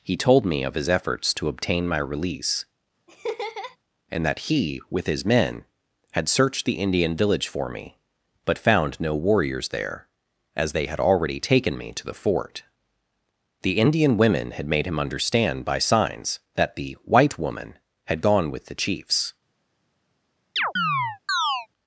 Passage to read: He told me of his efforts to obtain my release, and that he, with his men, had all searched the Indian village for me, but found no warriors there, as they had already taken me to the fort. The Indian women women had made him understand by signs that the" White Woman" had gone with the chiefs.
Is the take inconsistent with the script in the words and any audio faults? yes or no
yes